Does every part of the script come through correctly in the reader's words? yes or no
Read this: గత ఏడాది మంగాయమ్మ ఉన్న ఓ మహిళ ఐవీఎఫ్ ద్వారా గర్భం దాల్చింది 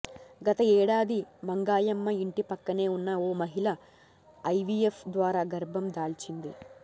no